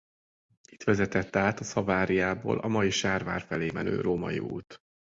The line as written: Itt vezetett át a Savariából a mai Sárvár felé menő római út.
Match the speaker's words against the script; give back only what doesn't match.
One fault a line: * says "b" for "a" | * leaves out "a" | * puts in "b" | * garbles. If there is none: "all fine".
all fine